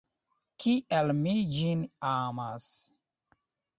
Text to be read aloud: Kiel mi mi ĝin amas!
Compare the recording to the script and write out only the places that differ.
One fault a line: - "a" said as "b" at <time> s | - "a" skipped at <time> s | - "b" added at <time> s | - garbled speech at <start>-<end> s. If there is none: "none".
- "mi" skipped at 1.4 s